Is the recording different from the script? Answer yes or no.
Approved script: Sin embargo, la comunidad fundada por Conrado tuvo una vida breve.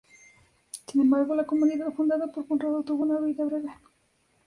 no